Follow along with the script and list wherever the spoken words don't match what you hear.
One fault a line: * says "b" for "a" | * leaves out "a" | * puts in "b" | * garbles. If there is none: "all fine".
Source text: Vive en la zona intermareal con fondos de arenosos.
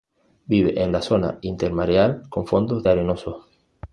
all fine